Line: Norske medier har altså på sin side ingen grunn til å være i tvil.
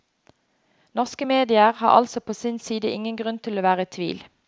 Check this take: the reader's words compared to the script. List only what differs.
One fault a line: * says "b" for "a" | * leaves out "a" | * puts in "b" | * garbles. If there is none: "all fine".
all fine